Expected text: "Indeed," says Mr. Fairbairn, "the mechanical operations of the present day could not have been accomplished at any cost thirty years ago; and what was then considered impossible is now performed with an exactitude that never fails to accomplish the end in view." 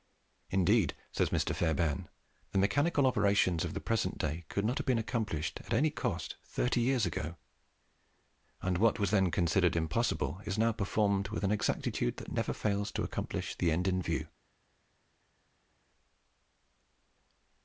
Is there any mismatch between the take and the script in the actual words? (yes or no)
no